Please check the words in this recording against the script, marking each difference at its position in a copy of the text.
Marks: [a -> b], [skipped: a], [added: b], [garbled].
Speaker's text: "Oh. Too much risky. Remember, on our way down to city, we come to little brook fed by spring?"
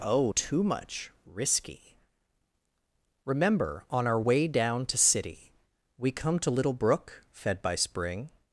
"Oh. Too much risky. Remember, on our way down to city, we come to little brook fed by spring?"